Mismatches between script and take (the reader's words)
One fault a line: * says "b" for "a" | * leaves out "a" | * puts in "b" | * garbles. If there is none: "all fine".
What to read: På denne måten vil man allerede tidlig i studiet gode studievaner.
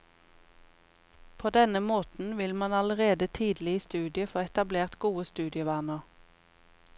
* puts in "få etablert"